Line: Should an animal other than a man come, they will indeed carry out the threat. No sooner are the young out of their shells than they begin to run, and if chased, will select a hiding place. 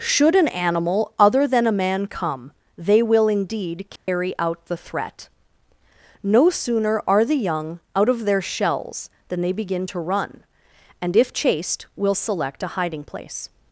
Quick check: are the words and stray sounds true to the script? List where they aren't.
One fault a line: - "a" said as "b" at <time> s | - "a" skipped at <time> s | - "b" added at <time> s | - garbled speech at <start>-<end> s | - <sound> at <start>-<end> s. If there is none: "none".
- dropout at 4.0-4.1 s